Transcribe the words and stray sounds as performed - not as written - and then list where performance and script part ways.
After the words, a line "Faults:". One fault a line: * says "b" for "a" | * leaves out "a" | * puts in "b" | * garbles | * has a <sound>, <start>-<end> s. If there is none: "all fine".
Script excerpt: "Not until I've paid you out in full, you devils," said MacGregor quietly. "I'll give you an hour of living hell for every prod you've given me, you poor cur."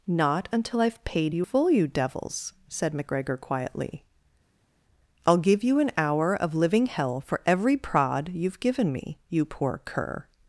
"Not until I've paid you full, you devils," said MacGregor quietly. "I'll give you an hour of living hell for every prod you've given me, you poor cur."
Faults:
* leaves out "out in"